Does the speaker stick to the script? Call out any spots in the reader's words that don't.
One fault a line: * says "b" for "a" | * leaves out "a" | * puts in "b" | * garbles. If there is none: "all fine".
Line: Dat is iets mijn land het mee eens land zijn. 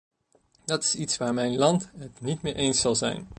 * puts in "waar"
* puts in "niet"
* says "zal" for "land"